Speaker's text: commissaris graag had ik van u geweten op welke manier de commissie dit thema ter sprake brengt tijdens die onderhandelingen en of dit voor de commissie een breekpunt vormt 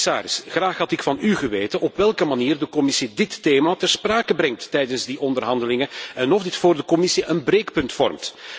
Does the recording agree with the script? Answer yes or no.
yes